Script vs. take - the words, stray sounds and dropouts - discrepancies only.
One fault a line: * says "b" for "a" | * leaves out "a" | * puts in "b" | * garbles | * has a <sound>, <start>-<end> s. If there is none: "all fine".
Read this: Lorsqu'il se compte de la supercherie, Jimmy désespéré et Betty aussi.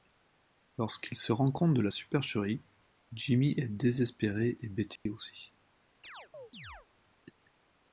* puts in "rend"
* puts in "est"
* has a dropout, 5.0-5.1 s
* has a chirp, 6.0-6.9 s